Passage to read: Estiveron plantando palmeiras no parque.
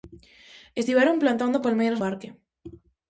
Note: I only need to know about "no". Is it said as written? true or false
false